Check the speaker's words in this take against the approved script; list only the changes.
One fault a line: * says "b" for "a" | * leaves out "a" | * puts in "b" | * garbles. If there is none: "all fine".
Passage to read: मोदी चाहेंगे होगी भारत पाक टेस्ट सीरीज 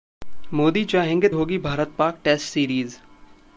all fine